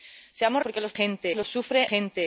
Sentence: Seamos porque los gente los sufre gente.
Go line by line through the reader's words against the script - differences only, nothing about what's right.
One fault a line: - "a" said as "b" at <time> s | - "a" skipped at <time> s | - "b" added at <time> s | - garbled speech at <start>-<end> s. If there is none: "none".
none